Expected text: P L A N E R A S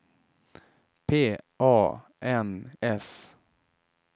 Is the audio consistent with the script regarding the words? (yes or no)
no